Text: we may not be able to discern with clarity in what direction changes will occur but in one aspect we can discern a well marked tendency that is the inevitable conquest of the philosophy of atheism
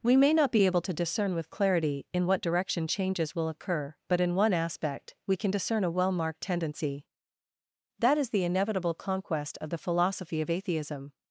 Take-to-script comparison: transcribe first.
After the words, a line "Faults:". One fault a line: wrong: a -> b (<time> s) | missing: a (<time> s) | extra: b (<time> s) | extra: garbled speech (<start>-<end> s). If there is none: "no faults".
we may not be able to discern with clarity in what direction changes will occur but in one aspect we can discern a well marked tendency that is the inevitable conquest of the philosophy of atheism
Faults:
no faults